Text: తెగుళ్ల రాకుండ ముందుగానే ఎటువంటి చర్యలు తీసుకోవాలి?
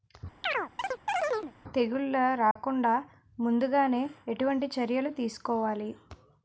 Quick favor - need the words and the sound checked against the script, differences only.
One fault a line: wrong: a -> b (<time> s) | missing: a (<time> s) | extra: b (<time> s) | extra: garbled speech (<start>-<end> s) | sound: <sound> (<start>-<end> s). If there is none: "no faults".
sound: chirp (0.4-1.5 s)
sound: dropout (2.5-2.6 s)